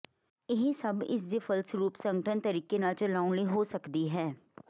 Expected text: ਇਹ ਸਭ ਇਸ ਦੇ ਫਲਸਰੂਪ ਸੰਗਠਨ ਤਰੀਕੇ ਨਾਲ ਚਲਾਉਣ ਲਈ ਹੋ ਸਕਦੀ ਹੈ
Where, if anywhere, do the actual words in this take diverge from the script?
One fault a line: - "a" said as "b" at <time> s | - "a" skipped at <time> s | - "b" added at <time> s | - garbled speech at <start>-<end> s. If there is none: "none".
none